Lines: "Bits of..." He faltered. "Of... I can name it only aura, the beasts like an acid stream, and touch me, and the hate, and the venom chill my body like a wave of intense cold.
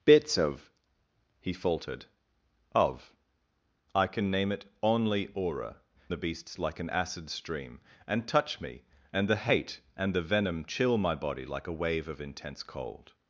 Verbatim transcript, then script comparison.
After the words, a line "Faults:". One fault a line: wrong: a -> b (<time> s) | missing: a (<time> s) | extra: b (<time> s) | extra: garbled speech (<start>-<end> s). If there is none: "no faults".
"Bits of..." He faltered. "Of... I can name it only aura, the beasts like an acid stream, and touch me, and the hate, and the venom chill my body like a wave of intense cold.
Faults:
no faults